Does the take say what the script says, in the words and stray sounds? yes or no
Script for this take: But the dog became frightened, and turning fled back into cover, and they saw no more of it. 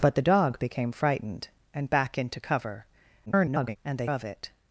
no